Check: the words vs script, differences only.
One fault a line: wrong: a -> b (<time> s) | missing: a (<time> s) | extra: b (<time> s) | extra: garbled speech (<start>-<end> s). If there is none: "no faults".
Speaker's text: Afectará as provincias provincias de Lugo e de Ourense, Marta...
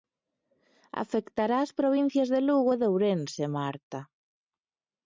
missing: provincias (2.3 s)